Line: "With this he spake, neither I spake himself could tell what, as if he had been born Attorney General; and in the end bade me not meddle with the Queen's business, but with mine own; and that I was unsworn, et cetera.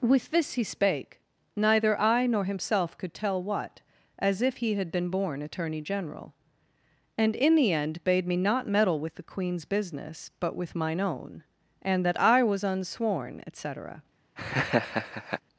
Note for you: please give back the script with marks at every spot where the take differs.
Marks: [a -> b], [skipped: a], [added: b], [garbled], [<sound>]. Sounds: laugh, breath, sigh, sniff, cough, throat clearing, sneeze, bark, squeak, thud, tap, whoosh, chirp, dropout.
"With this he spake, neither I [spake -> nor] himself could tell what, as if he had been born Attorney General; and in the end bade me not meddle with the Queen's business, but with mine own; and that I was unsworn, et cetera. [laugh]